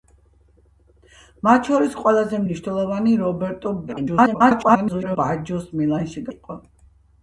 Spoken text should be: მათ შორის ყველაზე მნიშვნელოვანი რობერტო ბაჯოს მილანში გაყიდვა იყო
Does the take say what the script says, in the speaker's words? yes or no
no